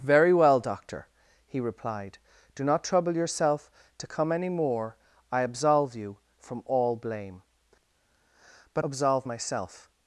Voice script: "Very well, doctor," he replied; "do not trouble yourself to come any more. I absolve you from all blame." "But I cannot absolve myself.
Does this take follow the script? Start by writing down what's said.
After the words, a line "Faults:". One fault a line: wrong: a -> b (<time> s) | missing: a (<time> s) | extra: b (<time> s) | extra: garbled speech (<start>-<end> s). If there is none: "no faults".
"Very well, doctor," he replied; "do not trouble yourself to come any more. I absolve you from all blame." "But absolve myself.
Faults:
missing: I cannot (8.8 s)